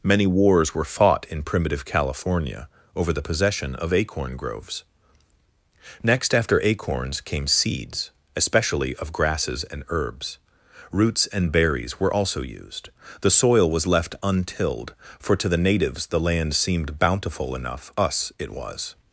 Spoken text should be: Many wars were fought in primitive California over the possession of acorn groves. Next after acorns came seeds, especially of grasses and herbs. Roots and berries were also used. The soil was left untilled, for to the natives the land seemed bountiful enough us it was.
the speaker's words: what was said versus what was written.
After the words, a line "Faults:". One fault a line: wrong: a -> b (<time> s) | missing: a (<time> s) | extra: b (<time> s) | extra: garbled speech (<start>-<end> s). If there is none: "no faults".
Many wars were fought in primitive California over the possession of acorn groves. Next after acorns came seeds, especially of grasses and herbs. Roots and berries were also used. The soil was left untilled, for to the natives the land seemed bountiful enough us it was.
Faults:
no faults